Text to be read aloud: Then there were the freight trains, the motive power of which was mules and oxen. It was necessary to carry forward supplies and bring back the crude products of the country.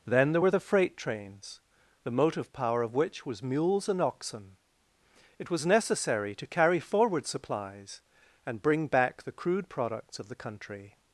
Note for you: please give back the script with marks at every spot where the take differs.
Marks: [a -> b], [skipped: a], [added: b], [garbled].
Then there were the freight trains, the motive power of which was mules and oxen. It was necessary to carry forward supplies and bring back the crude products of the country.